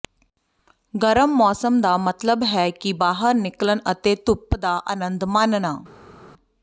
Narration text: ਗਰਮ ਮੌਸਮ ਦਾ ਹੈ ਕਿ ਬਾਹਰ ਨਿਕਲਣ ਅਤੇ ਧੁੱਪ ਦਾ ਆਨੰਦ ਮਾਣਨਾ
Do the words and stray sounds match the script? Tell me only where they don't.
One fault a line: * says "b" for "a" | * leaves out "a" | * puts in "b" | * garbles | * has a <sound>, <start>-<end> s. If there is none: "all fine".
* puts in "ਮਤਲਬ"